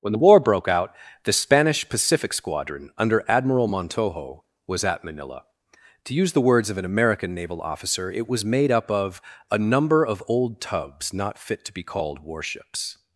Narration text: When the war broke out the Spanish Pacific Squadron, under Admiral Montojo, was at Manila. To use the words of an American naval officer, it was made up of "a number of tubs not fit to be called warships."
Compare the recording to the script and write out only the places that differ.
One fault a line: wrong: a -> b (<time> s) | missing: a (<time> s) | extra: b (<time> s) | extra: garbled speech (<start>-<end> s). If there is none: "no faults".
extra: old (10.3 s)